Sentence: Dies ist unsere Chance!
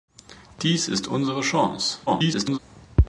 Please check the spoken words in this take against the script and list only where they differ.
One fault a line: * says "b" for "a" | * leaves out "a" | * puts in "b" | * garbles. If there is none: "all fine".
* garbles